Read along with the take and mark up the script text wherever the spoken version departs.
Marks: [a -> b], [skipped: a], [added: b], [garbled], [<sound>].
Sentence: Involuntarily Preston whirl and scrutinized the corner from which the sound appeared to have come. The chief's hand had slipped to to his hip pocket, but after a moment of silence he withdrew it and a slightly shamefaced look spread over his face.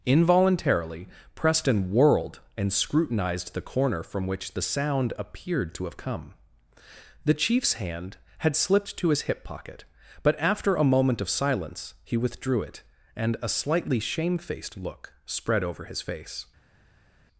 Involuntarily Preston [whirl -> whirled] and scrutinized the corner from which the sound appeared to have come. The chief's hand had slipped to [skipped: to] his hip pocket, but after a moment of silence he withdrew it and a slightly shamefaced look spread over his face.